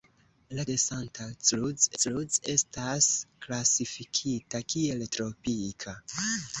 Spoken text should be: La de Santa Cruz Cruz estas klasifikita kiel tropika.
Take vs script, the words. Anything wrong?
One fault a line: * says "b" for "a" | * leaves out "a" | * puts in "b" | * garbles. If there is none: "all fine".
all fine